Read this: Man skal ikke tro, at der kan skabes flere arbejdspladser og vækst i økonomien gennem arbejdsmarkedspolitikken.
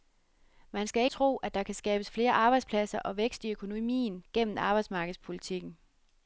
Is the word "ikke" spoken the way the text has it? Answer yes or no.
no